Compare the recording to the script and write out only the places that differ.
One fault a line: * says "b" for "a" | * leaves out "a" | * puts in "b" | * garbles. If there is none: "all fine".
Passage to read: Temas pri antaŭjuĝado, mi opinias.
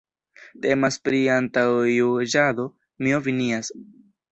all fine